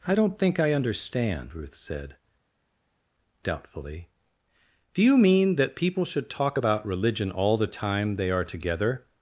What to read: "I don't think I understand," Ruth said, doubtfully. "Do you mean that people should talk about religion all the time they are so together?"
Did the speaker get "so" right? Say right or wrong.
wrong